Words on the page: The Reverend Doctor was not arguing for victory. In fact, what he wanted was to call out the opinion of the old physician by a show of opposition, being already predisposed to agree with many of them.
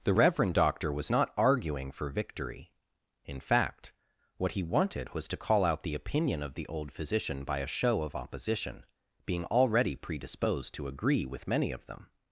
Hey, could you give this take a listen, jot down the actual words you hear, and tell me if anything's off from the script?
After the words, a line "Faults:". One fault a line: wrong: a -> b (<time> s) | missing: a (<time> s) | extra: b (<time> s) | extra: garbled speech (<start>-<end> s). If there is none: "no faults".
The Reverend Doctor was not arguing for victory. In fact, what he wanted was to call out the opinion of the old physician by a show of opposition, being already predisposed to agree with many of them.
Faults:
no faults